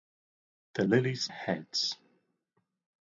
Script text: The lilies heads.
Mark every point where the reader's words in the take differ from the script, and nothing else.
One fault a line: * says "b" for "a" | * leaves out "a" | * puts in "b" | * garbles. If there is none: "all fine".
all fine